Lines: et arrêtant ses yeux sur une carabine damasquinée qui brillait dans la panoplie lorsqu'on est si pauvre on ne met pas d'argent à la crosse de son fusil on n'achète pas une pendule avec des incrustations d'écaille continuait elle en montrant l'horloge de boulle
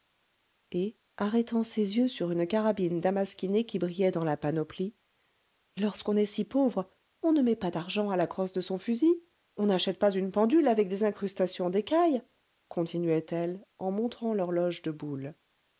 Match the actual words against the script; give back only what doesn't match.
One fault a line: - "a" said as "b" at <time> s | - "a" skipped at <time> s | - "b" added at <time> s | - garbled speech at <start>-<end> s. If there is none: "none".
none